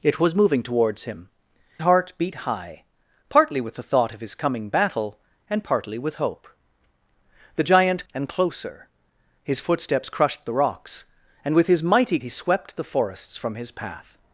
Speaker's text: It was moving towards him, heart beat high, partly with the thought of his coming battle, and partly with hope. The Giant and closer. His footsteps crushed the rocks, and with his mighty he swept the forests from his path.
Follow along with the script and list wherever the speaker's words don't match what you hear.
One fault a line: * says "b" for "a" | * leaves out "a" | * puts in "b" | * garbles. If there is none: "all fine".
all fine